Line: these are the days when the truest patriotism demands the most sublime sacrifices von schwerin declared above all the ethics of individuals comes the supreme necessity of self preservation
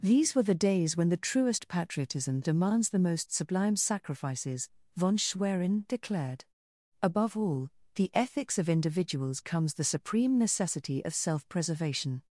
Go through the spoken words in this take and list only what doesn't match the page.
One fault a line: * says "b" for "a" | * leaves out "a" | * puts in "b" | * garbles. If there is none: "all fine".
* says "were" for "are"